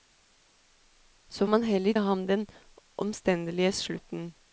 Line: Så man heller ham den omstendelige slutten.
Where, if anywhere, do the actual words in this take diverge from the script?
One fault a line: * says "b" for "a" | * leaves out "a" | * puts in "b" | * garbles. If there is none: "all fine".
all fine